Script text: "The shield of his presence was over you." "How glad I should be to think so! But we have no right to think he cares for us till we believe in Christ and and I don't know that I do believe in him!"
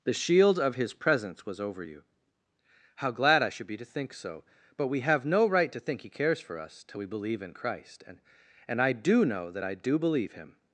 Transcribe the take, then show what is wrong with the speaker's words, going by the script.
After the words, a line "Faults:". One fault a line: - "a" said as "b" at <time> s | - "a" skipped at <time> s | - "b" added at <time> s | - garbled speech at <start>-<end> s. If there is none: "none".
"The shield of his presence was over you." "How glad I should be to think so! But we have no right to think he cares for us till we believe in Christ and and I do know that I do believe him!"
Faults:
- "don't" said as "do" at 8.9 s
- "in" skipped at 10.3 s